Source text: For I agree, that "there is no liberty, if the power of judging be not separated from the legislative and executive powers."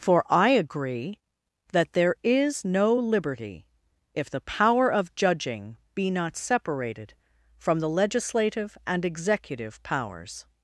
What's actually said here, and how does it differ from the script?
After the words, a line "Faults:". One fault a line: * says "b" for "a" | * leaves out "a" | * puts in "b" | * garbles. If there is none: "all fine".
For I agree, that "there is no liberty, if the power of judging be not separated from the legislative and executive powers."
Faults:
all fine